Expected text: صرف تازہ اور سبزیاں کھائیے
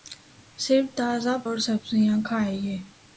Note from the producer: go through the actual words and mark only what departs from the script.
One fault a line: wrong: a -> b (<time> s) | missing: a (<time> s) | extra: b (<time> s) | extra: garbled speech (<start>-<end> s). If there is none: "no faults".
no faults